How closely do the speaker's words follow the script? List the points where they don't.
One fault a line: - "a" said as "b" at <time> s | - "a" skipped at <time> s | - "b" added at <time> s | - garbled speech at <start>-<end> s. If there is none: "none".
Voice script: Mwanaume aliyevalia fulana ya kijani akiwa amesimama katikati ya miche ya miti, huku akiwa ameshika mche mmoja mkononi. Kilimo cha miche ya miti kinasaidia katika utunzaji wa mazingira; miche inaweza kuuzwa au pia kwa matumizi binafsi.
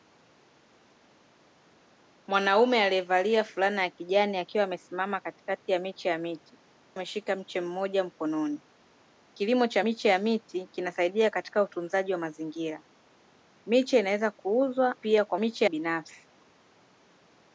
- "huku akiwa" skipped at 6.6 s
- "au" skipped at 15.0 s
- "matumizi" said as "miche" at 15.4 s